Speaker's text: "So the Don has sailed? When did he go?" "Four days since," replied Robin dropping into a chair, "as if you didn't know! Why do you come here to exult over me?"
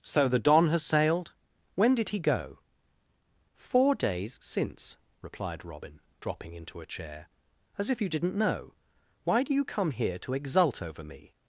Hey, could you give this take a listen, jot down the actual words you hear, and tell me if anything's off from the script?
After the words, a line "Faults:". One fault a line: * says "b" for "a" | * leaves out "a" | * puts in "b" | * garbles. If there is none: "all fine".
"So the Don has sailed? When did he go?" "Four days since," replied Robin dropping into a chair, "as if you didn't know! Why do you come here to exult over me?"
Faults:
all fine